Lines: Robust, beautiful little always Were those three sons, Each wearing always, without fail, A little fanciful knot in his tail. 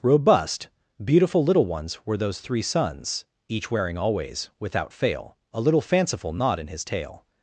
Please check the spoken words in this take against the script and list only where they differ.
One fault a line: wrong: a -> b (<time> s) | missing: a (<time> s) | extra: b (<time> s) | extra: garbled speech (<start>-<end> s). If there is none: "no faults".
wrong: always -> ones (1.7 s)